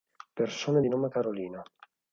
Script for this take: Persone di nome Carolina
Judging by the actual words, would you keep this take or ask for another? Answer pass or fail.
pass